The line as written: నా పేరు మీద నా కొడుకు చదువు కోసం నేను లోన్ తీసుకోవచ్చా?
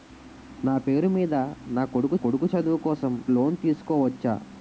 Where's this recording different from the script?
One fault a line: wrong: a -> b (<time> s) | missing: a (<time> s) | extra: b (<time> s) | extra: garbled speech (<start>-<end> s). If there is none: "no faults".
extra: కొడుకు (2.1 s)
missing: నేను (3.2 s)